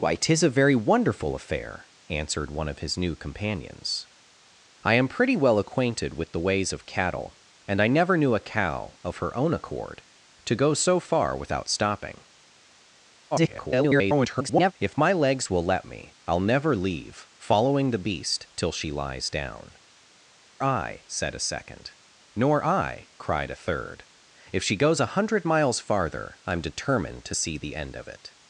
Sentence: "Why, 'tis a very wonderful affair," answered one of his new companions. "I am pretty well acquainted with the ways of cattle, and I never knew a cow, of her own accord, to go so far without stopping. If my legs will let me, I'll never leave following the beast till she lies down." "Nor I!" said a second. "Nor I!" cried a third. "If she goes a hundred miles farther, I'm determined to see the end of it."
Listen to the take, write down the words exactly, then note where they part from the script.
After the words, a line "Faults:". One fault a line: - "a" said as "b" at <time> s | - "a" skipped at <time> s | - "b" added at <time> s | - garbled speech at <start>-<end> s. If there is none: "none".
"Why, 'tis a very wonderful affair," answered one of his new companions. "I am pretty well acquainted with the ways of cattle, and I never knew a cow, of her own accord, to go so far without stopping. [garbled] If my legs will let me, I'll never leave following the beast till she lies down." "I!" said a second. "Nor I!" cried a third. "If she goes a hundred miles farther, I'm determined to see the end of it."
Faults:
- garbled speech at 13.3-14.7 s
- "Nor" skipped at 19.8 s